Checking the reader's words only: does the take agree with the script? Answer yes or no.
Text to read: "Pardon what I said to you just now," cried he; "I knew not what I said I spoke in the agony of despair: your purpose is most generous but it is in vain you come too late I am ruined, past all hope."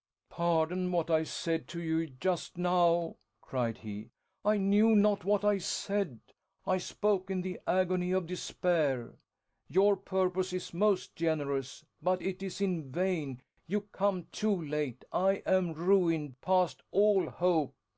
yes